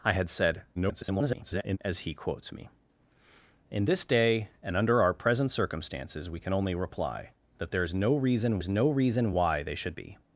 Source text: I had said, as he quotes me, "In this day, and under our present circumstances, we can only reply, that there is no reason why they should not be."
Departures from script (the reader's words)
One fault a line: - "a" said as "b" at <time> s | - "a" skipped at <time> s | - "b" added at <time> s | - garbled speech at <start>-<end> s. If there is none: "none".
- garbled speech at 0.8-1.8 s
- "is no reason" added at 8.6 s
- "not" skipped at 10.0 s